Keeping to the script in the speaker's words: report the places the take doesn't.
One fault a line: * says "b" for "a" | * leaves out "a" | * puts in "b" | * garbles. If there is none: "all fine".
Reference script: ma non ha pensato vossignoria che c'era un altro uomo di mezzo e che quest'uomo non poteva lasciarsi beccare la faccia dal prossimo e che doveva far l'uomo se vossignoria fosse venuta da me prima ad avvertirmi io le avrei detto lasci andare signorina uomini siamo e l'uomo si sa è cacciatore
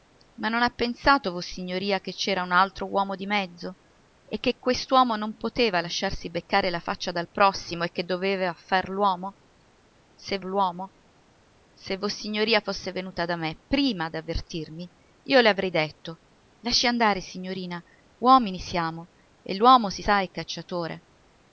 * puts in "l'uomo se"